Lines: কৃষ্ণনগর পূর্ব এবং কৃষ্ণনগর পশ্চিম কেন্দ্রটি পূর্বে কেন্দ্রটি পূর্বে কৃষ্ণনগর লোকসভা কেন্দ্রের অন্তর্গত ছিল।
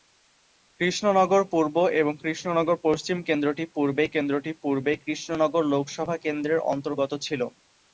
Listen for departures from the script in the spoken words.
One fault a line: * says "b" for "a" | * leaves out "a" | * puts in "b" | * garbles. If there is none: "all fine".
all fine